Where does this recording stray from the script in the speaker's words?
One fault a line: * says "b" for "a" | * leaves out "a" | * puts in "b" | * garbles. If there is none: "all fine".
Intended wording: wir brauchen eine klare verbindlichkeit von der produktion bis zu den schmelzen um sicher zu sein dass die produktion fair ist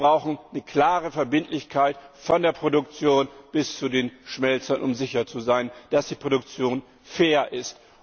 all fine